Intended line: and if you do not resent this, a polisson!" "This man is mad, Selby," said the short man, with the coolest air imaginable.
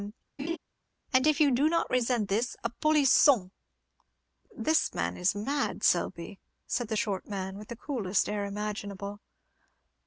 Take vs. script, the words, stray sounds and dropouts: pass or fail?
fail